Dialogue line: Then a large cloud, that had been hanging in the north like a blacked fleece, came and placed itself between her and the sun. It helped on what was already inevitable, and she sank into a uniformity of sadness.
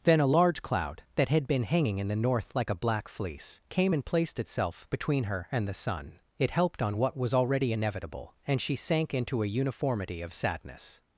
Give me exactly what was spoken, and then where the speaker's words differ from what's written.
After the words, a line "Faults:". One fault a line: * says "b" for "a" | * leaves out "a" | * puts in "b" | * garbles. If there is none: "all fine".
Then a large cloud, that had been hanging in the north like a black fleece, came and placed itself between her and the sun. It helped on what was already inevitable, and she sank into a uniformity of sadness.
Faults:
* says "black" for "blacked"